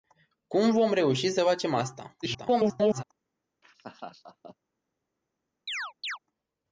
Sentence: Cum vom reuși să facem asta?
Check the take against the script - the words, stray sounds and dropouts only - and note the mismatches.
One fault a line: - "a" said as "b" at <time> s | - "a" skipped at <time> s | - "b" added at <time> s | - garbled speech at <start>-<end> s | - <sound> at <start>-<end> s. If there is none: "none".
- garbled speech at 2.2-3.0 s
- laugh at 3.6-4.6 s
- chirp at 5.7-6.2 s